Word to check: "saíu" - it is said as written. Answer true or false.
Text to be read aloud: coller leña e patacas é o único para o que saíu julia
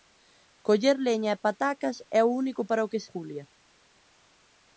false